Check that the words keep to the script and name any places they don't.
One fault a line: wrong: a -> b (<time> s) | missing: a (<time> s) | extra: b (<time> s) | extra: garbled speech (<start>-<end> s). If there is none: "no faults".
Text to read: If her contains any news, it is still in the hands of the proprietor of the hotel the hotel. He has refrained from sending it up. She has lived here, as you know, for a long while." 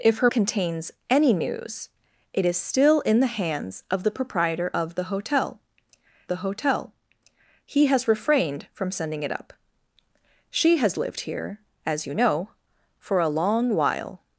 no faults